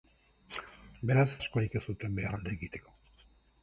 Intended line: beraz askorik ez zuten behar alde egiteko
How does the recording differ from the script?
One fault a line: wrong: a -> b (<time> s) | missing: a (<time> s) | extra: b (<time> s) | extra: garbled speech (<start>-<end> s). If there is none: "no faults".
no faults